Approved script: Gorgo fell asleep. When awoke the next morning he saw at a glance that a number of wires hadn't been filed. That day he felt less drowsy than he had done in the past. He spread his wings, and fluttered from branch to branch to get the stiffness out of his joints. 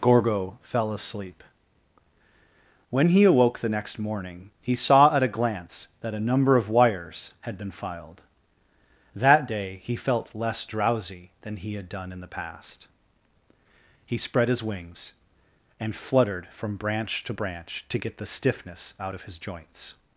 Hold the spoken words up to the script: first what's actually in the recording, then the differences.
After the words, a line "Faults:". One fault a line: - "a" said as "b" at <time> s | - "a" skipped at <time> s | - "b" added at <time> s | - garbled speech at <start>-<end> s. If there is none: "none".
Gorgo fell asleep. When he awoke the next morning he saw at a glance that a number of wires had been filed. That day he felt less drowsy than he had done in the past. He spread his wings, and fluttered from branch to branch to get the stiffness out of his joints.
Faults:
- "he" added at 3.1 s
- "hadn't" said as "had" at 7.4 s